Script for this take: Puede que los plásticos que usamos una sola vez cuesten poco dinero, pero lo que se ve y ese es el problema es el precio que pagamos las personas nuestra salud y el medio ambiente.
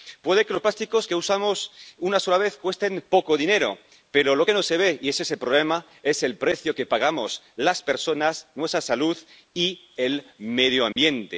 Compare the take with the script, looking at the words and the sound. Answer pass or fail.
fail